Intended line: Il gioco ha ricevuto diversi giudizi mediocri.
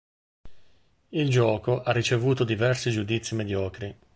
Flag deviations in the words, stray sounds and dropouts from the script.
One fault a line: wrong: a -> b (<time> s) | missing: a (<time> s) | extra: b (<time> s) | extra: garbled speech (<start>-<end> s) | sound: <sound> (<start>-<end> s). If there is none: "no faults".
no faults